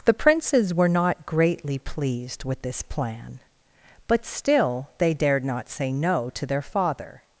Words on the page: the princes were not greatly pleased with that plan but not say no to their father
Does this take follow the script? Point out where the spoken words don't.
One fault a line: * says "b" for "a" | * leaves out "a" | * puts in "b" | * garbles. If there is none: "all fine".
* says "this" for "that"
* puts in "still they dared"